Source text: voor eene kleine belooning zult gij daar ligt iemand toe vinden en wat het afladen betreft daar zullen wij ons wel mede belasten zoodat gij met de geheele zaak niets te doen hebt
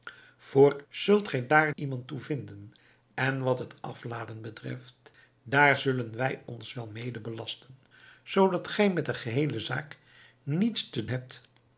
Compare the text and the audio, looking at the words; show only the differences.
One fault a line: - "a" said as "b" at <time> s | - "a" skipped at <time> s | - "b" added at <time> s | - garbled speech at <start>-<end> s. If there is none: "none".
- "eene kleine belooning" skipped at 0.8 s
- "ligt" skipped at 1.7 s
- "doen" skipped at 11.1 s